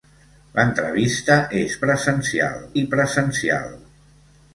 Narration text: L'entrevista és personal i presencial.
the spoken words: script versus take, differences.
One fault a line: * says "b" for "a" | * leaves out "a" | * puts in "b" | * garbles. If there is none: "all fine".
* says "presencial" for "personal"